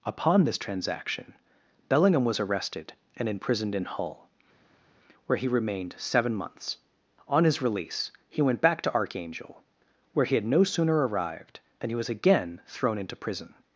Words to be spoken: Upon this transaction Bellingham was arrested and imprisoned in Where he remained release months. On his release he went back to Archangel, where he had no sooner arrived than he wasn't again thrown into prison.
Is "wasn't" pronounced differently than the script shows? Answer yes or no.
yes